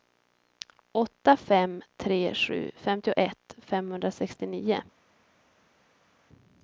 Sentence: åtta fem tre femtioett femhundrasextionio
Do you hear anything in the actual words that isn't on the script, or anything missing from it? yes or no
yes